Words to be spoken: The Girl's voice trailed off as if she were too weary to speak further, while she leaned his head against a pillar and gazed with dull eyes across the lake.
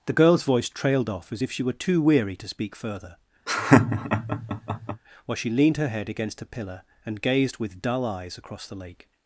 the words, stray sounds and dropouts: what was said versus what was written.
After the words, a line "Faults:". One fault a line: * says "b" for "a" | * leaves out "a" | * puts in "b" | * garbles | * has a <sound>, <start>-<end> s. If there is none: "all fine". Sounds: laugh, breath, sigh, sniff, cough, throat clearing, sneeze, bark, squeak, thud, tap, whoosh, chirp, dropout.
The Girl's voice trailed off as if she were too weary to speak further, while she leaned her head against a pillar and gazed with dull eyes across the lake.
Faults:
* has a laugh, 3.5-5.0 s
* says "her" for "his"